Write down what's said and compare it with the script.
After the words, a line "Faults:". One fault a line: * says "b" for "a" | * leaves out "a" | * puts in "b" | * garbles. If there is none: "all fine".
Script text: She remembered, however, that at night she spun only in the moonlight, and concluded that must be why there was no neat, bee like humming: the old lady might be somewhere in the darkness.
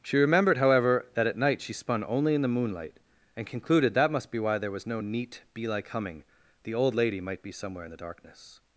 She remembered, however, that at night she spun only in the moonlight, and concluded that must be why there was no neat, bee like humming: the old lady might be somewhere in the darkness.
Faults:
all fine